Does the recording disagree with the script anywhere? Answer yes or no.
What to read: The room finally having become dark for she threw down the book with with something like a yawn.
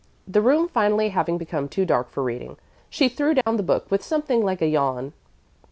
yes